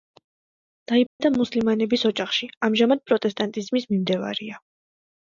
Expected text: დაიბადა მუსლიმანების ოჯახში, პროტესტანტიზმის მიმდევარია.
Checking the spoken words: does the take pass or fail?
fail